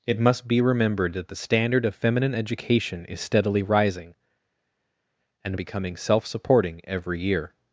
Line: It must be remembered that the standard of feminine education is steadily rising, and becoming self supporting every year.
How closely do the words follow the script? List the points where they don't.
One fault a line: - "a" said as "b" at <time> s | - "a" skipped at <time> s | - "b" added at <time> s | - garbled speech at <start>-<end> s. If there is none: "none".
none